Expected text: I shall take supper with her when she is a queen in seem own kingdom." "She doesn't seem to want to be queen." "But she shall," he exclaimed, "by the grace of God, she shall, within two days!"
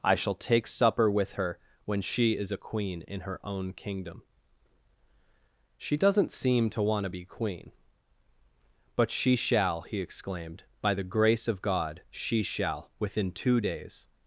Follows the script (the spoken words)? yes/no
no